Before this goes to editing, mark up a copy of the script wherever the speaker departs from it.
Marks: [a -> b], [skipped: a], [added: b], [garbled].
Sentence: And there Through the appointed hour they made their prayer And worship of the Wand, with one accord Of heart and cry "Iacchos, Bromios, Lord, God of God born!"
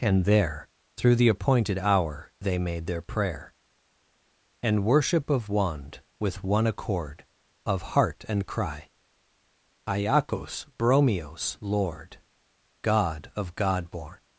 And there Through the appointed hour they made their prayer And worship of [skipped: the] Wand, with one accord Of heart and cry "Iacchos, Bromios, Lord, God of God born!"